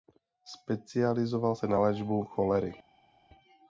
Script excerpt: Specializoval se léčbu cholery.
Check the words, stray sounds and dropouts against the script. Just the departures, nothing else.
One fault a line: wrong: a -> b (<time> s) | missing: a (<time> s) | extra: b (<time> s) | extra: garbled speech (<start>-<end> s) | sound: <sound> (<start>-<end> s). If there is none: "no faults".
extra: na (1.7 s)